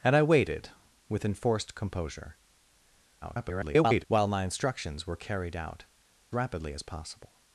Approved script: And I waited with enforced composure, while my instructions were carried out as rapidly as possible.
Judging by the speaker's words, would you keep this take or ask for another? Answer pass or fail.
fail